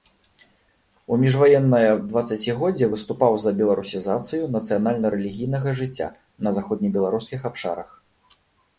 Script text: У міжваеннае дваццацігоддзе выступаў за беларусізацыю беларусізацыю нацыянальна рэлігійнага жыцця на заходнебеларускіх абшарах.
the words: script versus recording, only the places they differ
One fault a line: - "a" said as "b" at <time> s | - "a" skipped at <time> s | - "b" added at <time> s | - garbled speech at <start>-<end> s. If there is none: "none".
- "беларусізацыю" skipped at 4.4 s